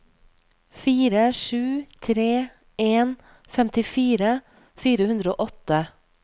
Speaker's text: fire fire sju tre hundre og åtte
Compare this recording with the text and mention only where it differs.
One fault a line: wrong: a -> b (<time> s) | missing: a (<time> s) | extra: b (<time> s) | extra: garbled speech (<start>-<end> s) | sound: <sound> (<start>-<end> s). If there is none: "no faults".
missing: fire (1.2 s)
extra: en femtifire fire (2.9 s)